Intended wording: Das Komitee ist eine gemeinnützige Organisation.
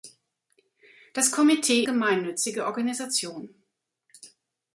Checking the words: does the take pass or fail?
fail